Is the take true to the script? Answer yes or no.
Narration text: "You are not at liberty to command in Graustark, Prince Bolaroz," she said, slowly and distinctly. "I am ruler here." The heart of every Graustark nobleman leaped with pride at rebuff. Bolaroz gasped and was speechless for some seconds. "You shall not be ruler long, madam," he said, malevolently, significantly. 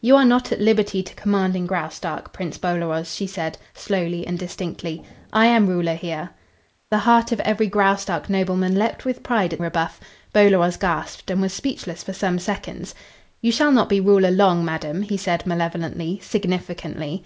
yes